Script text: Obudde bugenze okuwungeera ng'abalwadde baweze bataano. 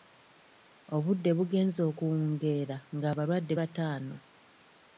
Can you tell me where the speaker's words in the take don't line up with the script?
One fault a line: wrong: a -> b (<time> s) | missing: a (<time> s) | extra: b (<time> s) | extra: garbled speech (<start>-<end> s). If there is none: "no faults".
missing: baweze (3.5 s)